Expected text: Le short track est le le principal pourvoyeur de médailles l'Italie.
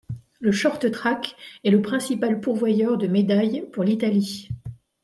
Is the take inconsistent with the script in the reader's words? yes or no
yes